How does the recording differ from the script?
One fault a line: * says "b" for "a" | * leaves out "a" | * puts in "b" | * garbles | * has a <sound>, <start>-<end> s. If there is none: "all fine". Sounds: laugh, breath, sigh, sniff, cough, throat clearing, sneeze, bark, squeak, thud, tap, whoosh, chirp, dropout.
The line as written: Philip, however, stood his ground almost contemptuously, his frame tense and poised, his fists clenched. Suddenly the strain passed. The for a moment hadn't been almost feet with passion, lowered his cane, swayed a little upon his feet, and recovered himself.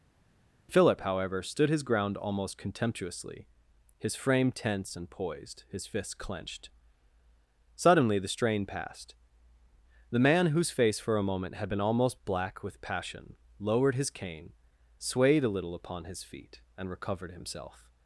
* puts in "man whose face"
* says "had" for "hadn't"
* says "black" for "feet"